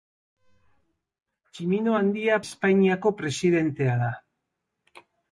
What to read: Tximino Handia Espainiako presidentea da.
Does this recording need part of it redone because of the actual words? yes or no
no